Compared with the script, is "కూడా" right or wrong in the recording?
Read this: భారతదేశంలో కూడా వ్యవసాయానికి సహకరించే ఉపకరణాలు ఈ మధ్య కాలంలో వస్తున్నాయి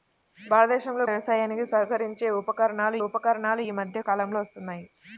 wrong